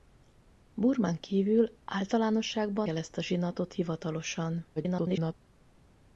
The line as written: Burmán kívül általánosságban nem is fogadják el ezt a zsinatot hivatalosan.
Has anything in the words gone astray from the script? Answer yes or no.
yes